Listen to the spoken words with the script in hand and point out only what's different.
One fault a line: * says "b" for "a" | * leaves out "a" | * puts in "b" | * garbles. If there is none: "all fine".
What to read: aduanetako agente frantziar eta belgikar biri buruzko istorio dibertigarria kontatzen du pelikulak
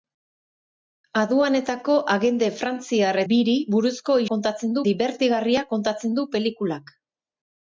* leaves out "eta belgikar"
* says "kontatzen" for "istorio"